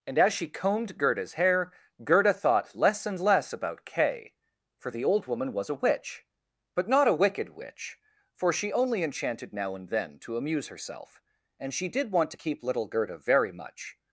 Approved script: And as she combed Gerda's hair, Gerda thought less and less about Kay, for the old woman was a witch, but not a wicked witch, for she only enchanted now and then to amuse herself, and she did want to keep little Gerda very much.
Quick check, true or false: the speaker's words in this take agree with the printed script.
true